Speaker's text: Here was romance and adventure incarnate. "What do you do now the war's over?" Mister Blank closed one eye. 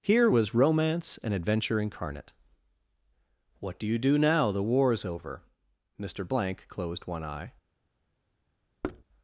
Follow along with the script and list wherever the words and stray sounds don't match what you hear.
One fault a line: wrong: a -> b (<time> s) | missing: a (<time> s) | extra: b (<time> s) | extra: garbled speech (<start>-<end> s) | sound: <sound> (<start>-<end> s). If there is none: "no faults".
sound: thud (8.8-9.0 s)